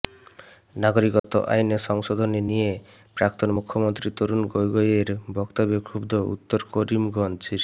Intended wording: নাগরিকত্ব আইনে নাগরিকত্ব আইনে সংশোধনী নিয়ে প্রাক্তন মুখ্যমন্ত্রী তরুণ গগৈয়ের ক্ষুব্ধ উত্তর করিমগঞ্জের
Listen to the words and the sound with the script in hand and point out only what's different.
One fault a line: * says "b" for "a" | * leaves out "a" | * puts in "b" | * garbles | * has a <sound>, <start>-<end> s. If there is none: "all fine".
* has a dropout, 1.2-1.2 s
* leaves out "নাগরিকত্ব আইনে"
* puts in "বক্তব্যে"